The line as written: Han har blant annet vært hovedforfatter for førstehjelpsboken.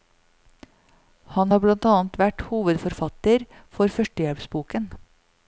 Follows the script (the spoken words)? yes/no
yes